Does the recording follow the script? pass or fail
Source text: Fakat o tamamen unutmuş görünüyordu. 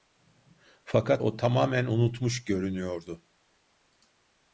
pass